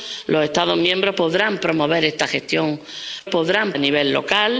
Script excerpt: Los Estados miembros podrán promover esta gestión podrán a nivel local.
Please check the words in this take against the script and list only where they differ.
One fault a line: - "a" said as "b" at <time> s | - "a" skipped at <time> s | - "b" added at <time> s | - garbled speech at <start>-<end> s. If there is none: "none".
none